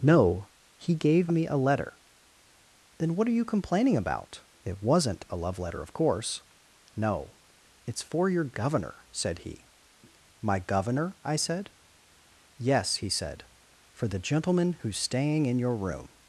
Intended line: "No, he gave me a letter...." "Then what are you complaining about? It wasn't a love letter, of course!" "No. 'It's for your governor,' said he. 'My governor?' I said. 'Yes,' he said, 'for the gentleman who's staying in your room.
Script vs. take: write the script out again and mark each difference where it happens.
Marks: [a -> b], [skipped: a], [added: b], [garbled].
"No, he gave me a letter...." "Then what are you complaining about? It wasn't a love letter, of course!" "No. 'It's for your governor,' said he. 'My governor?' I said. 'Yes,' he said, 'for the gentleman who's staying in your room.